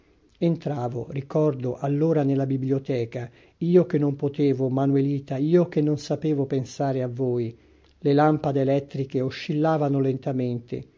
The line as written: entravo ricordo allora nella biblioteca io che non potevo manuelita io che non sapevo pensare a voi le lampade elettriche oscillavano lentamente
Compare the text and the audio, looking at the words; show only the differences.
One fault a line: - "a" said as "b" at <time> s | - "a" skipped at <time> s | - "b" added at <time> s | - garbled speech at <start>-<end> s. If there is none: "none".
none